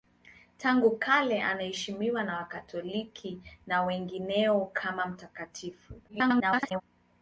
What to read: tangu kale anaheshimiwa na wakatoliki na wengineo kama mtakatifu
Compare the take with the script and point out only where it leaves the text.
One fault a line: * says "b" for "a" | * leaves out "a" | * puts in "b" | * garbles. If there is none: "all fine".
* garbles